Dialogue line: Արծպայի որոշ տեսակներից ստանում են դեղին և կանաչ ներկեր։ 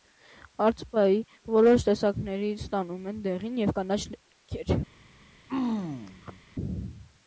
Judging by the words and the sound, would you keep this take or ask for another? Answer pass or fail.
fail